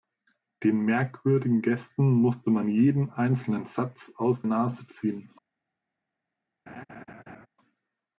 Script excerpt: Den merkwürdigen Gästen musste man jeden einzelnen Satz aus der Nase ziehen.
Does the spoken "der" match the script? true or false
false